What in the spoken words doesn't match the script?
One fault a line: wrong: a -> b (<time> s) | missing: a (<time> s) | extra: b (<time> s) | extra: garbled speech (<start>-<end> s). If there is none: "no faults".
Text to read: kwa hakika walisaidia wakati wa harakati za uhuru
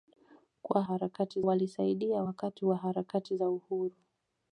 wrong: hakika -> harakati (0.8 s)